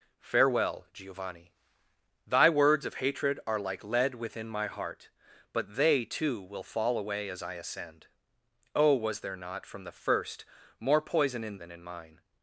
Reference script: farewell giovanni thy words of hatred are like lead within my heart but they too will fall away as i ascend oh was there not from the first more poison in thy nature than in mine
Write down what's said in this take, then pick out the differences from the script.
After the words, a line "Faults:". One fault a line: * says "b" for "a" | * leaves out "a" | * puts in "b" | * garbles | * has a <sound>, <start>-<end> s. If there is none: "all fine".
farewell giovanni thy words of hatred are like lead within my heart but they too will fall away as i ascend oh was there not from the first more poison in than in mine
Faults:
* leaves out "thy nature"